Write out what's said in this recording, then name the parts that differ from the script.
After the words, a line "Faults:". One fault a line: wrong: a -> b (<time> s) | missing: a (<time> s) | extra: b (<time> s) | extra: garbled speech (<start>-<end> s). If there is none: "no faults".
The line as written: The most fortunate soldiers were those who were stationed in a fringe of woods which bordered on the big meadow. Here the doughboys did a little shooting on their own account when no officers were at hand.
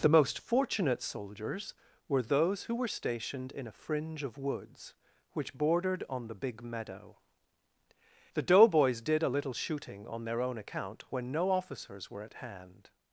The most fortunate soldiers were those who were stationed in a fringe of woods which bordered on the big meadow. The doughboys did a little shooting on their own account when no officers were at hand.
Faults:
missing: Here (7.2 s)